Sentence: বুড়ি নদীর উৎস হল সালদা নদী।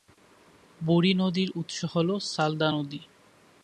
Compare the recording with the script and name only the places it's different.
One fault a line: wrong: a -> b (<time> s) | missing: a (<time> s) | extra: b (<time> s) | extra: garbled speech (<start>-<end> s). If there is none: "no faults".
no faults